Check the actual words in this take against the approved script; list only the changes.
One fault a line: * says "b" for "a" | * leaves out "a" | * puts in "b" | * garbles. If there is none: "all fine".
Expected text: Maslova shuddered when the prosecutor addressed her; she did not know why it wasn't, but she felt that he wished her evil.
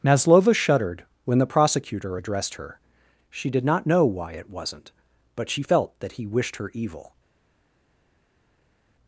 all fine